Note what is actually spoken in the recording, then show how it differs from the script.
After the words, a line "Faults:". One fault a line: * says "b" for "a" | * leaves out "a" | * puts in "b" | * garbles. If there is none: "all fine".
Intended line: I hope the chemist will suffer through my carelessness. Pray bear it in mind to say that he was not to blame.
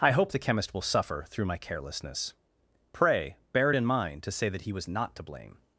I hope the chemist will suffer through my carelessness. Pray bear it in mind to say that he was not to blame.
Faults:
all fine